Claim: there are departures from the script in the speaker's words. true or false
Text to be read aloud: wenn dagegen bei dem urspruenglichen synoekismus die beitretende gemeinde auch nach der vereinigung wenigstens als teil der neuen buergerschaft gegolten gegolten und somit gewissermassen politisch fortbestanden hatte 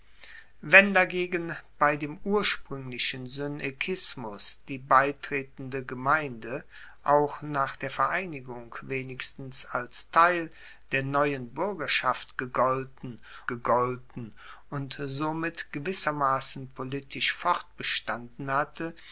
false